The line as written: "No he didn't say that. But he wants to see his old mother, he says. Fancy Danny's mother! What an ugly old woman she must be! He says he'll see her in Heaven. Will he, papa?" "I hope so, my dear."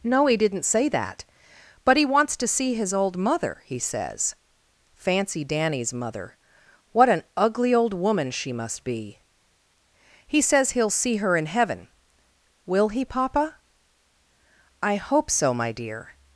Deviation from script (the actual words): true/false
false